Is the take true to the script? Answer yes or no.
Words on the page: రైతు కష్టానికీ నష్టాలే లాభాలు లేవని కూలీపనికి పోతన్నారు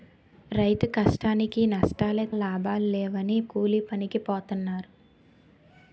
yes